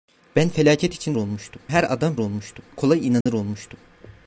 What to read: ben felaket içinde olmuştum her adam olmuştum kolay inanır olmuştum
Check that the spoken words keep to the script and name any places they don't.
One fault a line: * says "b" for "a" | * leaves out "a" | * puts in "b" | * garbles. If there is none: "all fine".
all fine